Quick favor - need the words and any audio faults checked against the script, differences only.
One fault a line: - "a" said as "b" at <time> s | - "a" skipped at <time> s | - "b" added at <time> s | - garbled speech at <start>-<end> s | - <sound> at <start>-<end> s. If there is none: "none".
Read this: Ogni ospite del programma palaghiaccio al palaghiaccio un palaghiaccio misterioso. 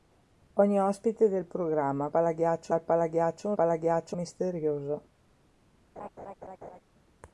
- laugh at 6.0-6.8 s